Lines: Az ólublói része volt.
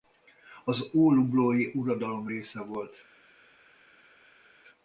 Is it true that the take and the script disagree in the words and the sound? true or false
true